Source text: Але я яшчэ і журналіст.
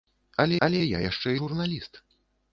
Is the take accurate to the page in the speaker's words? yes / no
no